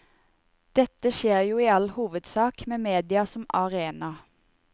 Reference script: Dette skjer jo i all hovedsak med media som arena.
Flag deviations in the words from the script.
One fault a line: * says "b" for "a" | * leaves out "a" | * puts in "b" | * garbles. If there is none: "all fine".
all fine